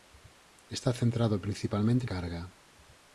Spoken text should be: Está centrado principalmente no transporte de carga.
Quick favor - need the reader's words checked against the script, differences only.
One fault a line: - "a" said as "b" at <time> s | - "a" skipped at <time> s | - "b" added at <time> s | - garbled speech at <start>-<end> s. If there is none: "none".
- "no transporte de" skipped at 2.1 s